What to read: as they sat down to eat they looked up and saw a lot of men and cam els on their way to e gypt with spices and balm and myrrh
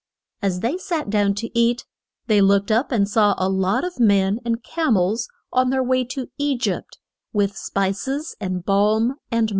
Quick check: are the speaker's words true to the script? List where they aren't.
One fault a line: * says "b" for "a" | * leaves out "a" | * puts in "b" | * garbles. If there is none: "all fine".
all fine